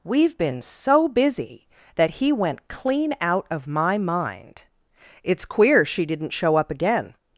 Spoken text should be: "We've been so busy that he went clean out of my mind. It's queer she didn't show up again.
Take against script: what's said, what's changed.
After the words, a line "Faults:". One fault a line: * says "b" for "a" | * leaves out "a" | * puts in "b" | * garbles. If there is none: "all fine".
"We've been so busy that he went clean out of my mind. It's queer she didn't show up again.
Faults:
all fine